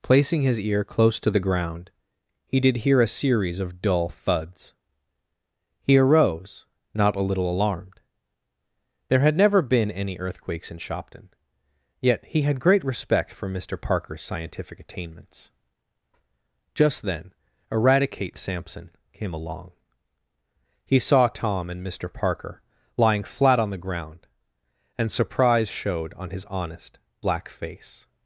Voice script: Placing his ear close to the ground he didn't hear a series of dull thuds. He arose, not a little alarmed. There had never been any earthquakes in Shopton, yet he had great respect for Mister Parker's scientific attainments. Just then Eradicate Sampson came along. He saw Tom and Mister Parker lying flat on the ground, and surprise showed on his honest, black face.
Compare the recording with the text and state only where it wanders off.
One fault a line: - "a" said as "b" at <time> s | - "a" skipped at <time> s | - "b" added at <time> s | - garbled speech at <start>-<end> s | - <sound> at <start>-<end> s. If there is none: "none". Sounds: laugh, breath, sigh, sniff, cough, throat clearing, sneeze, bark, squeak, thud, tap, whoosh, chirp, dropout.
- "didn't" said as "did" at 2.6 s